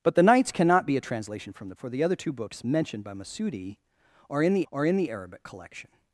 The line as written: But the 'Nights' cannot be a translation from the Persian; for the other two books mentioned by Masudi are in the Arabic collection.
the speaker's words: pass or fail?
fail